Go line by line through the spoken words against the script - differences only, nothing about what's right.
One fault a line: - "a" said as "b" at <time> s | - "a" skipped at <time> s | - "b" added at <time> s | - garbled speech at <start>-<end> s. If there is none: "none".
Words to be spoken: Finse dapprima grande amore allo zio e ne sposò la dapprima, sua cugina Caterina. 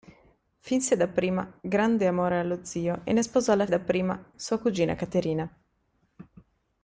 none